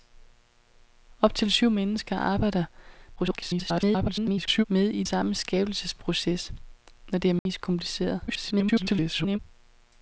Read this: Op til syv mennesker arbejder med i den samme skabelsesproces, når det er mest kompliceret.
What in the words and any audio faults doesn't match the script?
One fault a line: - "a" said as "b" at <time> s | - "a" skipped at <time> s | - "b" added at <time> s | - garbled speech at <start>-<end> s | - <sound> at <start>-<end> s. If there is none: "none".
- garbled speech at 3.2-4.6 s
- "den" skipped at 5.0 s
- dropout at 7.4-7.5 s
- garbled speech at 8.3-9.4 s